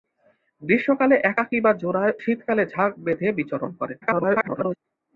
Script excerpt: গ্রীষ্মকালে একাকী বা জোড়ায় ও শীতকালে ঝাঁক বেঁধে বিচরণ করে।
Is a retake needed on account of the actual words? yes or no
yes